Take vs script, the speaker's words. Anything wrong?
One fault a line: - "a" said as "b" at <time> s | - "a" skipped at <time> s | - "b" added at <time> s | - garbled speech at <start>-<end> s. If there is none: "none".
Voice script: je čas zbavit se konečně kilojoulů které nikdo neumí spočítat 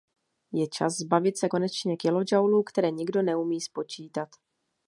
none